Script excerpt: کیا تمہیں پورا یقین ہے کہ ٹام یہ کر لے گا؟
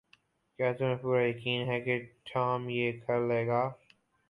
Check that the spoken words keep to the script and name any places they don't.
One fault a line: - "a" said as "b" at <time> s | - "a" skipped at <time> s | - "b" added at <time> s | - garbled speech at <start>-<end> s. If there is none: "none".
none